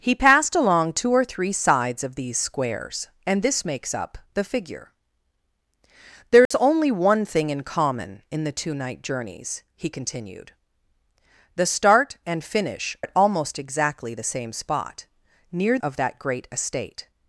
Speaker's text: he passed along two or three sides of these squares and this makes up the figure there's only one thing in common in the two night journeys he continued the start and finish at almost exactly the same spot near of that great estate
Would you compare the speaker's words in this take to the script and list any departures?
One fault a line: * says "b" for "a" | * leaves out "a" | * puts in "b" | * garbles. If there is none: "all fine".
all fine